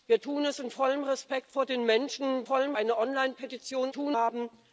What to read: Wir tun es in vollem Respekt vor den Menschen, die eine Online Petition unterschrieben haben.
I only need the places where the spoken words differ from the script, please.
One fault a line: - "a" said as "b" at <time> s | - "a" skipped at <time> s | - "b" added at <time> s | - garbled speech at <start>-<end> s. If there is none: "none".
- "die" said as "vollem" at 2.4 s
- "unterschrieben" said as "tun" at 3.9 s